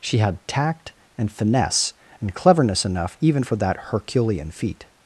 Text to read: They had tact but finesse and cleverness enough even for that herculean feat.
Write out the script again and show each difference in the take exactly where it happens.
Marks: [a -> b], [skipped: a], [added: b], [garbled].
[They -> She] had tact [but -> and] finesse and cleverness enough even for that herculean feat.